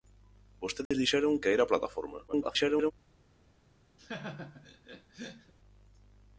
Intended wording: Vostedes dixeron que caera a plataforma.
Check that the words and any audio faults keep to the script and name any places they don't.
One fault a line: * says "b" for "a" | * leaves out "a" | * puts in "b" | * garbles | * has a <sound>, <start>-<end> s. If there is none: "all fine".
* has a dropout, 0.9-0.9 s
* leaves out "que"
* garbles
* has a laugh, 4.0-5.5 s